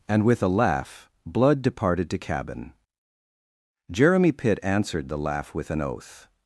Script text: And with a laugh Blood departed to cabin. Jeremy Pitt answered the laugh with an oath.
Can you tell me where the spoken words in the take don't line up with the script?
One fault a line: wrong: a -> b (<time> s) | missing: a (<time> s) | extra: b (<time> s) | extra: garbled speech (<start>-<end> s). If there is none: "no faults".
no faults